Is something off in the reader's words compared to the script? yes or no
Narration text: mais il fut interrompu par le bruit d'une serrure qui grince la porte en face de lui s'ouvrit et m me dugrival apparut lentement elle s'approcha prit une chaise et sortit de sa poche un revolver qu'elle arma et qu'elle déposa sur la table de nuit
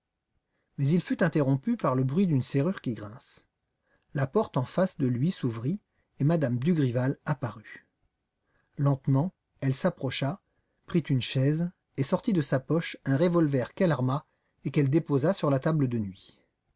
no